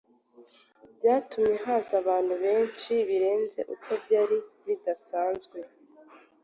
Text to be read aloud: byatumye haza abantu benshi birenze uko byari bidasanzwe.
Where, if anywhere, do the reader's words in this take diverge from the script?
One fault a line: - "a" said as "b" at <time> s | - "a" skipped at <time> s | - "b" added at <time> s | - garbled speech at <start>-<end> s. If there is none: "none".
none